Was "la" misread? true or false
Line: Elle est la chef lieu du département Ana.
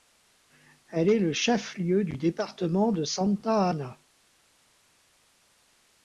true